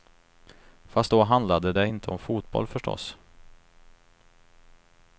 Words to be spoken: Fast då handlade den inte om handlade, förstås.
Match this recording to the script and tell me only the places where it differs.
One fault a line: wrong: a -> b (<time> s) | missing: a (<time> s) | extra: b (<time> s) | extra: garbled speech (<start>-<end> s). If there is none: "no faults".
wrong: den -> det (1.7 s)
wrong: handlade -> fotboll (2.2 s)